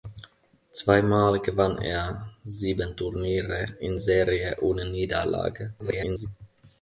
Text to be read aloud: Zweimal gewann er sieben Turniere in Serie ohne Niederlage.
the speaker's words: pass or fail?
fail